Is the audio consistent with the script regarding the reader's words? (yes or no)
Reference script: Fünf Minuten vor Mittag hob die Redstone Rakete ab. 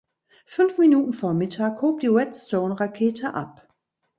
yes